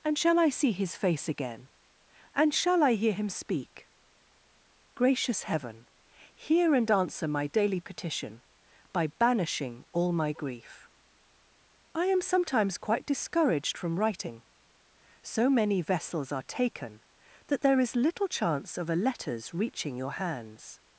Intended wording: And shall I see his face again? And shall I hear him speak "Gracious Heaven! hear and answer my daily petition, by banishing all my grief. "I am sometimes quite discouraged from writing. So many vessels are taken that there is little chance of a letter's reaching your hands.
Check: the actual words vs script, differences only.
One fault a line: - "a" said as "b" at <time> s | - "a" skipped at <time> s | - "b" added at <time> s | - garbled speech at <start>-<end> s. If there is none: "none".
none